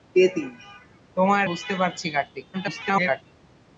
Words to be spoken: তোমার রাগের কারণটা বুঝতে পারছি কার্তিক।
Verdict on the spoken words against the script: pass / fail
fail